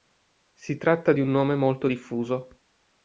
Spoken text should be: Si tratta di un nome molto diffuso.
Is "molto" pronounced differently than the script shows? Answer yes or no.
no